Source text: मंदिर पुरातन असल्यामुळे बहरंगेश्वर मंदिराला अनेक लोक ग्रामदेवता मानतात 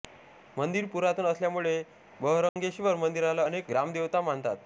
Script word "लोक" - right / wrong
wrong